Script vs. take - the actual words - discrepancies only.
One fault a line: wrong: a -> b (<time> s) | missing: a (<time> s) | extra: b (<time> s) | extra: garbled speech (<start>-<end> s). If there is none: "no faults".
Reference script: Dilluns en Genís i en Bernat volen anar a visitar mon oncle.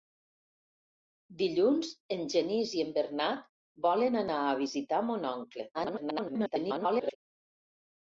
extra: garbled speech (5.7-7.2 s)